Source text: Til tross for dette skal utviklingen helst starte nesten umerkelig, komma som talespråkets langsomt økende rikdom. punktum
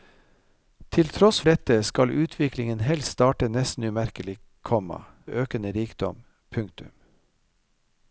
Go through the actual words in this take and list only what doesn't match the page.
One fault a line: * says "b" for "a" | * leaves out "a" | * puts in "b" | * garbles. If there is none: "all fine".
* leaves out "for"
* leaves out "som talespråkets langsomt"